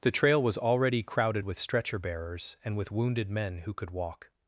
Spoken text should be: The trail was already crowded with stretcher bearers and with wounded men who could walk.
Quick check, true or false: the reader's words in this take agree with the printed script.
true